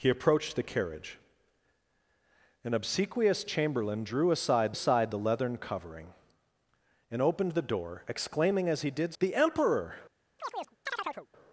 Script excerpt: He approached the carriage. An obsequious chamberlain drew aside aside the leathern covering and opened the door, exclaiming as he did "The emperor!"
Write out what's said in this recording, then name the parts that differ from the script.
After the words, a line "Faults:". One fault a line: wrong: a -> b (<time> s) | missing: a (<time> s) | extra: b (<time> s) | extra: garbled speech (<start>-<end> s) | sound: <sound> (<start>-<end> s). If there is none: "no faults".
He approached the carriage. An obsequious chamberlain drew aside aside the leathern covering and opened the door, exclaiming as he did "The emperor!"
Faults:
sound: chirp (10.4-11.3 s)